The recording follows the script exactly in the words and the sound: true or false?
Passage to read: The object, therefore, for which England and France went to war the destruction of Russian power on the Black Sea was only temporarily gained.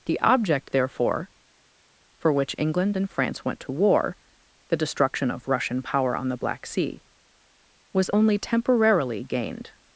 true